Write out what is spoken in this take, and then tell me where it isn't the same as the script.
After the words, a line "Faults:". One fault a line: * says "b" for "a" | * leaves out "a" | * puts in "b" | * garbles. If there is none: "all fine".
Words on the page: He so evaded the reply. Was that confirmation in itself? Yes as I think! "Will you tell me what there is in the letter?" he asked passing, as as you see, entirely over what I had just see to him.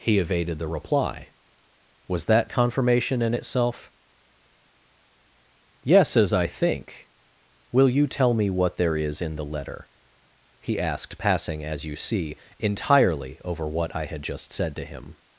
He evaded the reply. Was that confirmation in itself? Yes as I think! "Will you tell me what there is in the letter?" he asked passing, as you see, entirely over what I had just said to him.
Faults:
* leaves out "so"
* leaves out "as"
* says "said" for "see"